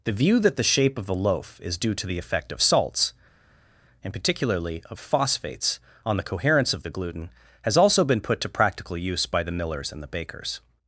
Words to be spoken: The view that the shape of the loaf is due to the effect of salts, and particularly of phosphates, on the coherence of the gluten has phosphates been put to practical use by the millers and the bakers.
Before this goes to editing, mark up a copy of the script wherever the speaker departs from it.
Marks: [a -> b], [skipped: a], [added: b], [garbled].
The view that the shape of the loaf is due to the effect of salts, and particularly of phosphates, on the coherence of the gluten has [phosphates -> also] been put to practical use by the millers and the bakers.